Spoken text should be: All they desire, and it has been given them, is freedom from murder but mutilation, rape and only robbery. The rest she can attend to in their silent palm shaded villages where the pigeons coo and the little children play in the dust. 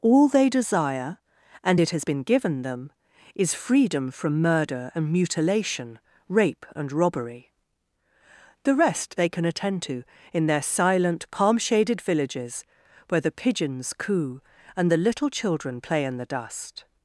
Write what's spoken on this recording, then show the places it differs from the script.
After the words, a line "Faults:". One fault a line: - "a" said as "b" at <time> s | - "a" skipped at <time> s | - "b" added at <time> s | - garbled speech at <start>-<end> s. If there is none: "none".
All they desire, and it has been given them, is freedom from murder and mutilation, rape and robbery. The rest they can attend to in their silent palm shaded villages where the pigeons coo and the little children play in the dust.
Faults:
- "but" said as "and" at 4.9 s
- "only" skipped at 6.9 s
- "she" said as "they" at 9.2 s